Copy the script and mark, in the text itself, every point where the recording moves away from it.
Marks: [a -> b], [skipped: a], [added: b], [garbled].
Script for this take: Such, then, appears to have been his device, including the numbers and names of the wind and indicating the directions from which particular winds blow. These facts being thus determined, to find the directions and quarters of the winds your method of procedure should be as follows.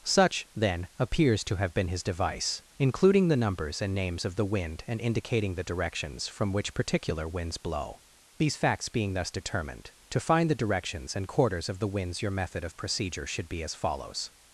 Such, then, appears to have been his device, including the numbers and names of the wind and indicating the directions from which particular winds blow. These facts being thus determined, to find the directions and quarters of the winds your method of procedure should be as follows.